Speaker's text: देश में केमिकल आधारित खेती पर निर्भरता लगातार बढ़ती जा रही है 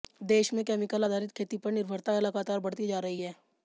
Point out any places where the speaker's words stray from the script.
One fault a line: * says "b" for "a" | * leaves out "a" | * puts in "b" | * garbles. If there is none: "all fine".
all fine